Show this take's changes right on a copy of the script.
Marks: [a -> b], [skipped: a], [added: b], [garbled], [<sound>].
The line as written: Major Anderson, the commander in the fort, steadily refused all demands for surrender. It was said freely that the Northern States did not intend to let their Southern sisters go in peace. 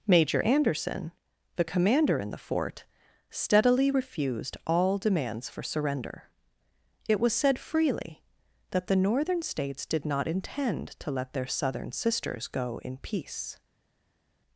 Major Anderson, the commander in the fort, steadily refused all demands for surrender. It was said freely that the Northern States did not intend to let their Southern sisters go in peace.